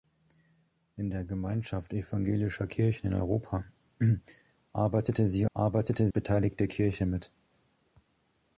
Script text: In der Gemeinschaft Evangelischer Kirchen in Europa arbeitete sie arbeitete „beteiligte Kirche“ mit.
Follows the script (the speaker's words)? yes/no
yes